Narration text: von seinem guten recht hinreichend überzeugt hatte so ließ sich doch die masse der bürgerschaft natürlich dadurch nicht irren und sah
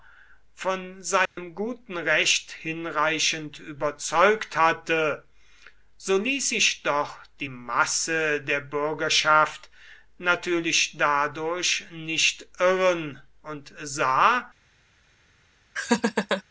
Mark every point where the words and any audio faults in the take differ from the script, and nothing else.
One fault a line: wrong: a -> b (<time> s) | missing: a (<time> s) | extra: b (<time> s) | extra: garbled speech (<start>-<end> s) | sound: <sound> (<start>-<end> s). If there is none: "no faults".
sound: dropout (1.3-1.4 s)
sound: laugh (15.8-16.4 s)